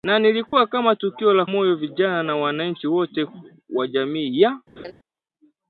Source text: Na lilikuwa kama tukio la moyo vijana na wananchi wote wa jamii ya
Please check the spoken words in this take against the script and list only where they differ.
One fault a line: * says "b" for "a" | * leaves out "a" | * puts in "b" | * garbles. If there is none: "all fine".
all fine